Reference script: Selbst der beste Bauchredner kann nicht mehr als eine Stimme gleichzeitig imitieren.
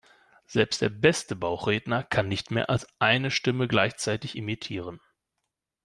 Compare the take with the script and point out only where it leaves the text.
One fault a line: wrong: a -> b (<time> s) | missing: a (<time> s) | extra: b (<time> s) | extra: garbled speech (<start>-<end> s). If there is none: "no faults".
no faults